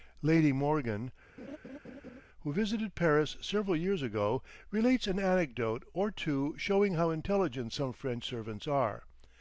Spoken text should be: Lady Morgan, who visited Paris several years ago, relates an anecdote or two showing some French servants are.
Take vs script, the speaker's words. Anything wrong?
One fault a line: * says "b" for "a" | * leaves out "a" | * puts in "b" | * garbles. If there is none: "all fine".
* puts in "how intelligent"